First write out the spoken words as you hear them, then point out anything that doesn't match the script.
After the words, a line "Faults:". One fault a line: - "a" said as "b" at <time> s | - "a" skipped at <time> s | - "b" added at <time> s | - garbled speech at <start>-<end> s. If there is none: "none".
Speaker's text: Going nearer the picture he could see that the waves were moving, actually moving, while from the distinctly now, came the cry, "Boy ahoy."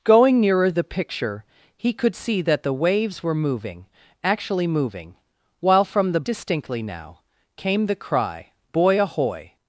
Going nearer the picture he could see that the waves were moving, actually moving, while from the distinctly now, came the cry, "Boy ahoy."
Faults:
none